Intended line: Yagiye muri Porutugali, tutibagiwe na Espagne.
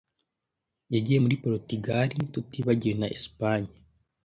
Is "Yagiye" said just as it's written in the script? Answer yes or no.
yes